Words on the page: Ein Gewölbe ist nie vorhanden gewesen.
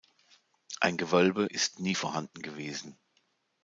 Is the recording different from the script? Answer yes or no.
no